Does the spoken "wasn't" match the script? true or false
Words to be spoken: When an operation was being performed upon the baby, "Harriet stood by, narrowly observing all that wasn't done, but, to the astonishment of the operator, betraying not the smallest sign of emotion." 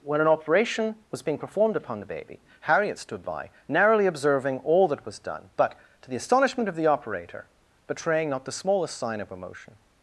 false